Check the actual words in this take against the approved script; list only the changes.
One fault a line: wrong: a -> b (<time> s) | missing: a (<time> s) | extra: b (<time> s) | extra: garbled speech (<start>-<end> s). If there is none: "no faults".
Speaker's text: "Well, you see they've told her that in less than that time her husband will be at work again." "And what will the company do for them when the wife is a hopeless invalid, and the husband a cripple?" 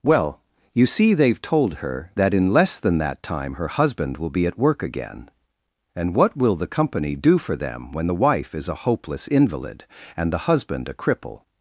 no faults